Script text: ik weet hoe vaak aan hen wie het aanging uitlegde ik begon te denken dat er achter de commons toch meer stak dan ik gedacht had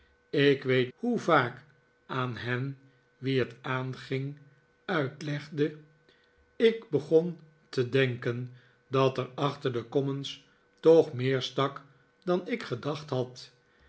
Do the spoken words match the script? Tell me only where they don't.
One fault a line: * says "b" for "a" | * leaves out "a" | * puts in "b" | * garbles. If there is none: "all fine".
all fine